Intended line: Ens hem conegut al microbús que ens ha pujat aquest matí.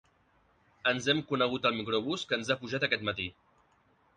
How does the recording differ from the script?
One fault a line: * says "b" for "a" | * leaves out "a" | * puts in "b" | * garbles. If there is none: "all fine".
all fine